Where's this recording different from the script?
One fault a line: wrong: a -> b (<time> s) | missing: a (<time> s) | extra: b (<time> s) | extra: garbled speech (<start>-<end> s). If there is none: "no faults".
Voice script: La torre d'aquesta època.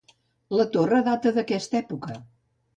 extra: data (1.1 s)